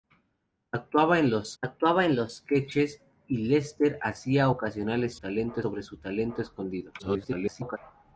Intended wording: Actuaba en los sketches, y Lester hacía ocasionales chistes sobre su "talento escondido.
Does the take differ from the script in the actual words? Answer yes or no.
yes